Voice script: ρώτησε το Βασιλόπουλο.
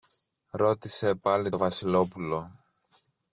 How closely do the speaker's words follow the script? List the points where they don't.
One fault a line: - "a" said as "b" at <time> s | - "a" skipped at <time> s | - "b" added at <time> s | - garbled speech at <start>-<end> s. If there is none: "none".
- "πάλι" added at 1.1 s